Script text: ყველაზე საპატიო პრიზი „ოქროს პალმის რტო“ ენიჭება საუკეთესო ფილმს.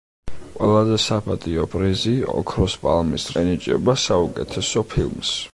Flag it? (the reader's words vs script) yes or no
yes